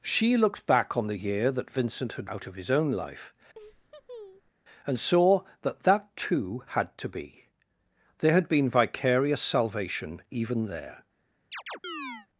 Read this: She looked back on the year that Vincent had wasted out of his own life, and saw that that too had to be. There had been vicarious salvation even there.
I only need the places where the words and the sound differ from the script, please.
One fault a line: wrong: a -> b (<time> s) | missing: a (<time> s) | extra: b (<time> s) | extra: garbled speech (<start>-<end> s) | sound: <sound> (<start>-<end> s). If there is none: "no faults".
missing: wasted (2.3 s)
sound: laugh (3.5-4.5 s)
sound: chirp (11.5-12.3 s)